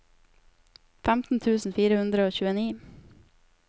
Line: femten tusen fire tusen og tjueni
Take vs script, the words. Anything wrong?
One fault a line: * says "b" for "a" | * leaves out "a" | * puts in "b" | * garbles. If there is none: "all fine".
* says "hundre" for "tusen"